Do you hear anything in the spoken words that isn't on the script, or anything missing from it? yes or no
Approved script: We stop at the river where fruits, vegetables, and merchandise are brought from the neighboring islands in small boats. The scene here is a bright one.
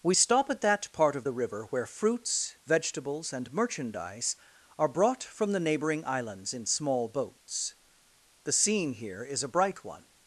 yes